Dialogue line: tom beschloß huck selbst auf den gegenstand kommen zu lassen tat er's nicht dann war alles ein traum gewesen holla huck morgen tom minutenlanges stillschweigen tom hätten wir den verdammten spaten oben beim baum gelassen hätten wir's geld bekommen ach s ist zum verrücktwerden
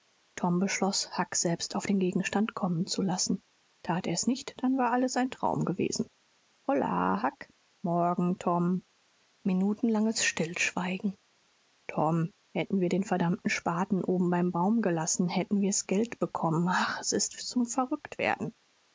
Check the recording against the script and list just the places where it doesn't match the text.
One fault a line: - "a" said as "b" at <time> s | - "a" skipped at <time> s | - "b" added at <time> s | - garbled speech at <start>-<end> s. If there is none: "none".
none